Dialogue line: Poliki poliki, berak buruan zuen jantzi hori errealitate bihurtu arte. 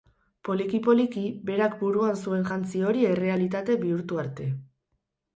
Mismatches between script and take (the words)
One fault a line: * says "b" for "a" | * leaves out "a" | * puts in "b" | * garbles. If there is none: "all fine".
all fine